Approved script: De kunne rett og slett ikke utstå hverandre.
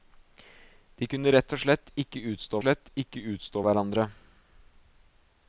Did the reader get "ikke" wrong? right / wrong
right